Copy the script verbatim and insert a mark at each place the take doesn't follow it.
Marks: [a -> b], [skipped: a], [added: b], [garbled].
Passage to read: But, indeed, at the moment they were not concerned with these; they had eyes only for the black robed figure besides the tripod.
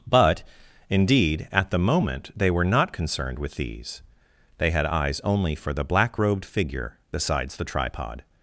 But, indeed, at the moment they were not concerned with these; they had eyes only for the black robed figure besides the tripod.